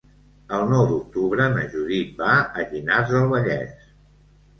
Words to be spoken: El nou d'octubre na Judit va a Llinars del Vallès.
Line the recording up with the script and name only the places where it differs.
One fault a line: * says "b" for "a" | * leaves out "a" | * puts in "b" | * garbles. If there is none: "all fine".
all fine